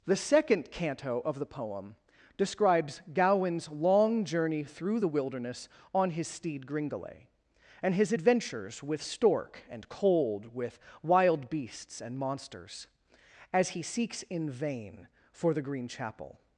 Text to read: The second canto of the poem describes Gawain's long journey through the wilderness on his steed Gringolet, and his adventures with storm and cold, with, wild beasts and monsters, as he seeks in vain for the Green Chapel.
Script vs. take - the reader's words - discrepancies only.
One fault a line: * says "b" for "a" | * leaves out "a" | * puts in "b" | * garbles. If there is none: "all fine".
* says "stork" for "storm"